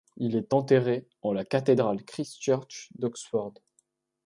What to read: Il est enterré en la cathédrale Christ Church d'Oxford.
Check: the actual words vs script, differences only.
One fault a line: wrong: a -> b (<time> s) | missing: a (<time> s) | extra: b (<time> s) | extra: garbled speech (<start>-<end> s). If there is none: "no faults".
no faults